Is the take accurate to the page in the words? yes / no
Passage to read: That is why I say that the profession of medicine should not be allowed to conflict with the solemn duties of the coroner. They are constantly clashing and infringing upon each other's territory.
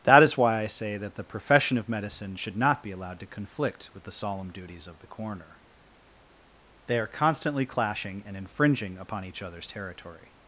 yes